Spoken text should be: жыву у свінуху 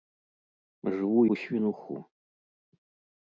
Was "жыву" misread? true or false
false